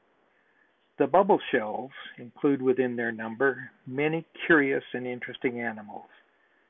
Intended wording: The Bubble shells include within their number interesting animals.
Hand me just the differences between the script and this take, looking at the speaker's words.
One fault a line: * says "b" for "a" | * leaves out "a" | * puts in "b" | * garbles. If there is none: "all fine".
* puts in "many curious and"